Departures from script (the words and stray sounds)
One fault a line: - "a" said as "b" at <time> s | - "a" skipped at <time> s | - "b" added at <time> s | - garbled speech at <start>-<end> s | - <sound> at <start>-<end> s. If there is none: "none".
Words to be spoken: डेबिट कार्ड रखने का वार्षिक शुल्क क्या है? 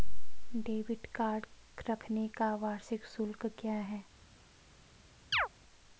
- chirp at 5.3-5.5 s